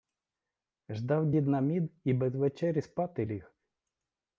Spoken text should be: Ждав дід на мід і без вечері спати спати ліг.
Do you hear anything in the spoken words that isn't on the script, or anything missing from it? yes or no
yes